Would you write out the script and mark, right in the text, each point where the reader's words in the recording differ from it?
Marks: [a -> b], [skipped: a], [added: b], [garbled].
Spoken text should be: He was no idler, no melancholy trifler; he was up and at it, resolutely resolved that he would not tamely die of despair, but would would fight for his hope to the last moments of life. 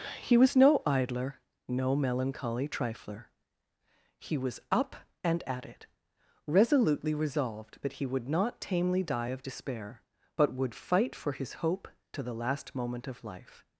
He was no idler, no melancholy trifler; he was up and at it, resolutely resolved that he would not tamely die of despair, but would [skipped: would] fight for his hope to the last [moments -> moment] of life.